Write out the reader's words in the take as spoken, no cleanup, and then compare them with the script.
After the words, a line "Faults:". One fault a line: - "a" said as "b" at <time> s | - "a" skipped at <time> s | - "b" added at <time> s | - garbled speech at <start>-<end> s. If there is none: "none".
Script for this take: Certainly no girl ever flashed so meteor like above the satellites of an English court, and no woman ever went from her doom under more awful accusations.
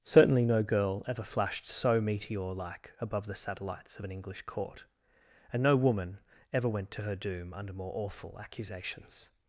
Certainly no girl ever flashed so meteor like above the satellites of an English court, and no woman ever went to her doom under more awful accusations.
Faults:
- "from" said as "to" at 6.9 s